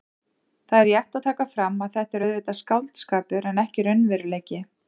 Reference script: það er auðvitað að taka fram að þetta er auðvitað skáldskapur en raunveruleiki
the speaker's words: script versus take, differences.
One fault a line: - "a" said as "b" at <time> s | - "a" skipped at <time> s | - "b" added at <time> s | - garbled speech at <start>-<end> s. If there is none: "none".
- "auðvitað" said as "rétt" at 0.9 s
- "ekki" added at 3.6 s